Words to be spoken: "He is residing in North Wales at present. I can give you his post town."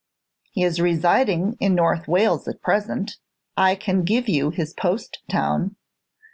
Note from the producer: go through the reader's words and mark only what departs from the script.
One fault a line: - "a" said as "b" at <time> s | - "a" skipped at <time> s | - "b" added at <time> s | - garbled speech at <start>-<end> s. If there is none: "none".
none